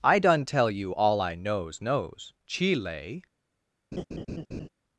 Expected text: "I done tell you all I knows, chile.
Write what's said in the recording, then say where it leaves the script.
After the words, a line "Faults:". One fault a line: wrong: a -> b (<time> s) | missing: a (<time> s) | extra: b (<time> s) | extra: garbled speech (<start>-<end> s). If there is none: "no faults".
"I done tell you all I knows knows, chile.
Faults:
extra: knows (1.8 s)